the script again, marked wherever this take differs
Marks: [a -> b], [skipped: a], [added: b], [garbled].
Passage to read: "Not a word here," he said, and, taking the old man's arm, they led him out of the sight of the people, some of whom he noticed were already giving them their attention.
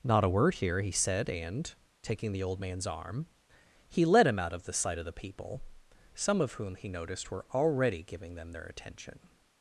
"Not a word here," he said, and, taking the old man's arm, [they -> he] led him out of the sight of the people, some of whom he noticed were already giving them their attention.